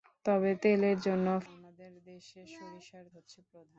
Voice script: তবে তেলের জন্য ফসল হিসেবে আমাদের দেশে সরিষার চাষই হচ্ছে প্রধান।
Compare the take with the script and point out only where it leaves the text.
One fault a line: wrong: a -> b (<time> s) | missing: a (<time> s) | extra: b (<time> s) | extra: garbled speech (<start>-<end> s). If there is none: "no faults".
missing: ফসল হিসেবে (1.3 s)
missing: চাষই (3.1 s)